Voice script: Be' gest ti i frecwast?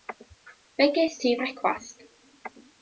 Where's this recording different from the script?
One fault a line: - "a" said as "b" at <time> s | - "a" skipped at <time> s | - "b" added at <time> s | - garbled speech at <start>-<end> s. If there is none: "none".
none